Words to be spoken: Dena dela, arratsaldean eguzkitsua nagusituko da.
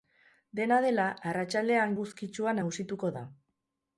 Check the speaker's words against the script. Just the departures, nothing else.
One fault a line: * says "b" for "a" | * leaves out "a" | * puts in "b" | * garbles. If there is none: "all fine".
all fine